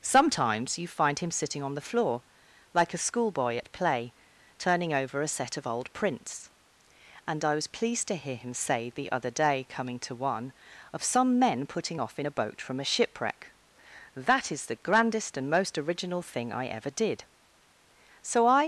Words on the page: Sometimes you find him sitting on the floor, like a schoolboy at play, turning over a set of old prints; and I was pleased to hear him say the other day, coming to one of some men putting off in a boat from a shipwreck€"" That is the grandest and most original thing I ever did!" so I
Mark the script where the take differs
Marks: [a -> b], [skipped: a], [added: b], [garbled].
Sometimes you find him sitting on the floor, like a schoolboy at play, turning over a set of old prints; and I was pleased to hear him say the other day, coming to one of some men putting off in a boat from a shipwreck€"" That is the grandest and most original thing I ever did!" so I